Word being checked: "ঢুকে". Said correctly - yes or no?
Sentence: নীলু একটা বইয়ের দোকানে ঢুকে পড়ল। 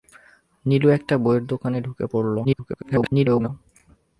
yes